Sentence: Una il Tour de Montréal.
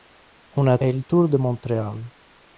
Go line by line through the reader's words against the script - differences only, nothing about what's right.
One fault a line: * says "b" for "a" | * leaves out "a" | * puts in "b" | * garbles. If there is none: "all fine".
all fine